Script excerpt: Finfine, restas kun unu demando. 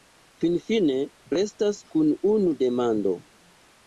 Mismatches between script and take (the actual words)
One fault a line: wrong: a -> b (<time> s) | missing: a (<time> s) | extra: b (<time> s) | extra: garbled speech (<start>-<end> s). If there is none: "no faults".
no faults